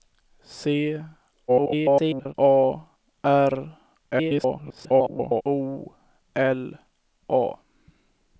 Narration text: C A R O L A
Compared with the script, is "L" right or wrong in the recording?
right